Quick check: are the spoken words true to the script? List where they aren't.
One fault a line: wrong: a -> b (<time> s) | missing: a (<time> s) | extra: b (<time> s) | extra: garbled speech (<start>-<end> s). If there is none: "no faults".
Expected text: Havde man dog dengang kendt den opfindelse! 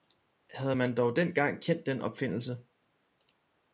no faults